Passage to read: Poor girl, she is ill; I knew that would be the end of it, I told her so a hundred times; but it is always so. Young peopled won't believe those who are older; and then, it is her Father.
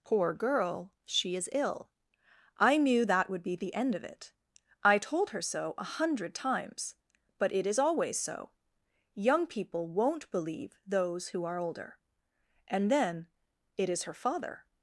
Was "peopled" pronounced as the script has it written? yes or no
no